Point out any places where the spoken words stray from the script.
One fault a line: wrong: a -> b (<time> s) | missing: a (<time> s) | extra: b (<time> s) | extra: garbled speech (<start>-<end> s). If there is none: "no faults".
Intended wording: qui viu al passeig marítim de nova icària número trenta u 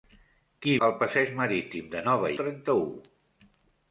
missing: viu (0.7 s)
missing: icària número (2.3 s)